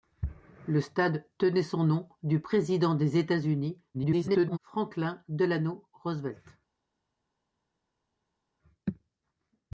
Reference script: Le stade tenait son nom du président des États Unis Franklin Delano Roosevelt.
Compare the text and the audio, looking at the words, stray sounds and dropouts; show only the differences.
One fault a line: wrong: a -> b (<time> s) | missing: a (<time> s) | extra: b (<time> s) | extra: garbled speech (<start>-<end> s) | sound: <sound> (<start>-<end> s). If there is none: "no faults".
extra: garbled speech (3.9-4.6 s)